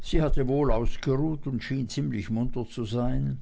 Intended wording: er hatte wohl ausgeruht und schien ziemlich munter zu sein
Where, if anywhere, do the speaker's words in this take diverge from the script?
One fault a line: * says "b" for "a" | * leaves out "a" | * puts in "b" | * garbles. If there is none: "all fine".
* says "sie" for "er"